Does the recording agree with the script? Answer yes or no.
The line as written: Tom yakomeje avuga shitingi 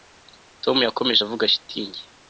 yes